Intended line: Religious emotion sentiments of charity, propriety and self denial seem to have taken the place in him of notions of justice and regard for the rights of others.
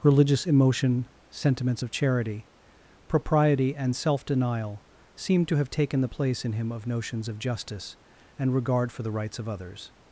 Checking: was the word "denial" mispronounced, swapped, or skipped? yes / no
no